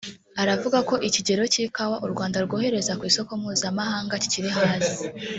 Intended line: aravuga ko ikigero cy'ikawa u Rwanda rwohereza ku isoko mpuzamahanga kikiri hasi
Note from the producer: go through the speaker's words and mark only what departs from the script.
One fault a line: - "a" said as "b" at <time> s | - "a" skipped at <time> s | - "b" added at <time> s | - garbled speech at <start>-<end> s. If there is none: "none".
none